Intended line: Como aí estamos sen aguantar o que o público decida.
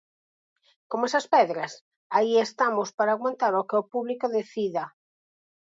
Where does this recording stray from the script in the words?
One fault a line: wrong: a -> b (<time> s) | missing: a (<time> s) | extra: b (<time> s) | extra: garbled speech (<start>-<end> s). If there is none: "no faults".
extra: esas pedras (1.1 s)
wrong: sen -> para (3.0 s)